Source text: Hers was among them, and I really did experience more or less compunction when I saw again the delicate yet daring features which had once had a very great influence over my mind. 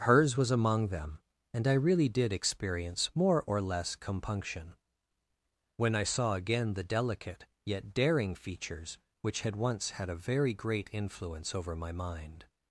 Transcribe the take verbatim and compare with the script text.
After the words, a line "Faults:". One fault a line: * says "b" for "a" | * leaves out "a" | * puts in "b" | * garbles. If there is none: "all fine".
Hers was among them, and I really did experience more or less compunction when I saw again the delicate yet daring features which had once had a very great influence over my mind.
Faults:
all fine